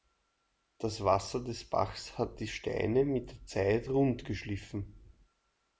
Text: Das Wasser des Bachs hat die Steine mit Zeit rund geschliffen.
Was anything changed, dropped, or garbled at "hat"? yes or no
no